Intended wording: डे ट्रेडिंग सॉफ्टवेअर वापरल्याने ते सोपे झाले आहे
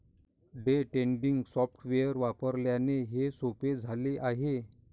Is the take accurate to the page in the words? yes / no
no